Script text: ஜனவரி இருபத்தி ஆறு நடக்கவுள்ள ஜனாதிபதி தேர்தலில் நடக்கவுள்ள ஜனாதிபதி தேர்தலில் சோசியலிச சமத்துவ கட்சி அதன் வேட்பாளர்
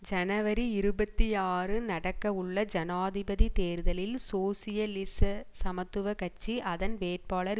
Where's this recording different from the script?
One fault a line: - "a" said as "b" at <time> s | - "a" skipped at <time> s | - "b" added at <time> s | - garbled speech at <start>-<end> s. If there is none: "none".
- "நடக்கவுள்ள ஜனாதிபதி தேர்தலில்" skipped at 4.2 s